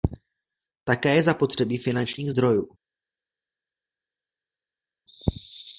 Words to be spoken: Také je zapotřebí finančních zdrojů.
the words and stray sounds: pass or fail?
pass